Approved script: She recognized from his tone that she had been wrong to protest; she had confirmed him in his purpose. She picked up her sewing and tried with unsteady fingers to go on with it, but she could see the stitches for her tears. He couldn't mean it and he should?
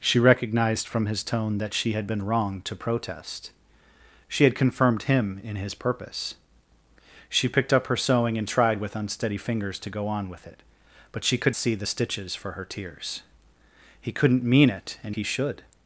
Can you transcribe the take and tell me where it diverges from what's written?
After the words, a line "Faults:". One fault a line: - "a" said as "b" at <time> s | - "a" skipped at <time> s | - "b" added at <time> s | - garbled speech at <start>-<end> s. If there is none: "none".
She recognized from his tone that she had been wrong to protest; she had confirmed him in his purpose. She picked up her sewing and tried with unsteady fingers to go on with it, but she could see the stitches for her tears. He couldn't mean it and he should?
Faults:
none